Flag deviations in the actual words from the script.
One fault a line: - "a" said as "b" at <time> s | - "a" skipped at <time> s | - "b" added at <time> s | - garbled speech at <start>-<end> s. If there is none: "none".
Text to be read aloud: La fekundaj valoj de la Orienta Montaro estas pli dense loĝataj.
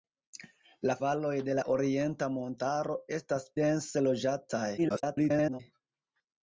- "fekundaj" skipped at 0.9 s
- "pli" skipped at 3.5 s
- garbled speech at 4.8-5.6 s